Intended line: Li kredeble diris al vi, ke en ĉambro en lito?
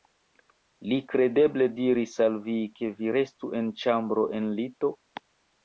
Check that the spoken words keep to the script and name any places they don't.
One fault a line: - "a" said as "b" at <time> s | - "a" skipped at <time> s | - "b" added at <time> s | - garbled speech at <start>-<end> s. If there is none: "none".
- "vi restu" added at 3.0 s